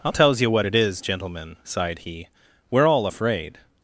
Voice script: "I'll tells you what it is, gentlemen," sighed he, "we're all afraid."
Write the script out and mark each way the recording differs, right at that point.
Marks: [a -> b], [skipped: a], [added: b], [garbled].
"I'll tells you what it is, gentlemen," sighed he, "we're all afraid."